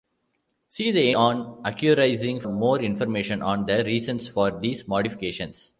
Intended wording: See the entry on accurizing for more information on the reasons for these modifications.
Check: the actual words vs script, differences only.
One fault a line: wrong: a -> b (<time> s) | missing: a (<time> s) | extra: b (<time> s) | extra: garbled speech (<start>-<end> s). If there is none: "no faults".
missing: entry (1.1 s)
missing: for (2.4 s)